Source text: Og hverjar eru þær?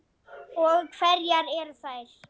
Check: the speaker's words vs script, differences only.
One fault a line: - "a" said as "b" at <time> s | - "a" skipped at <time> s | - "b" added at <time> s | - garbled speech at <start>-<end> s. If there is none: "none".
none